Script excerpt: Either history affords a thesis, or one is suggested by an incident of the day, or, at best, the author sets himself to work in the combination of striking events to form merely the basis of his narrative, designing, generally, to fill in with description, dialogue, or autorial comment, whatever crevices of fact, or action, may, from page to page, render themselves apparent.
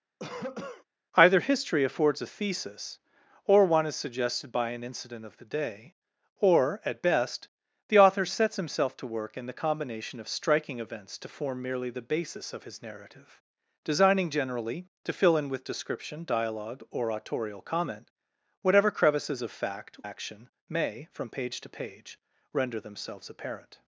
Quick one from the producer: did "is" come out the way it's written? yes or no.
yes